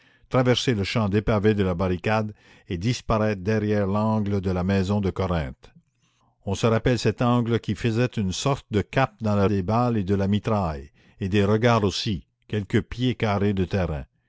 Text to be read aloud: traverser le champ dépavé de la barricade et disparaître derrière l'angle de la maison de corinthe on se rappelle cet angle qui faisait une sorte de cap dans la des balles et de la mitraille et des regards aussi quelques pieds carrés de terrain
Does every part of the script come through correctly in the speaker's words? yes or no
yes